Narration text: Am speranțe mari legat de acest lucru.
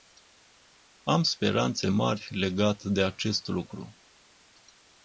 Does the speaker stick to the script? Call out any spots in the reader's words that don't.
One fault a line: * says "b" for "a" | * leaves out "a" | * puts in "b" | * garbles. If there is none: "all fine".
all fine